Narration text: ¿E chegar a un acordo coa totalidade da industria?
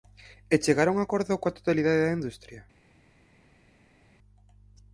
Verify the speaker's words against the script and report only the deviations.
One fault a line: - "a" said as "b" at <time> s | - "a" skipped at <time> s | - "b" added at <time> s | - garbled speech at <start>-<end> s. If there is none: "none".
none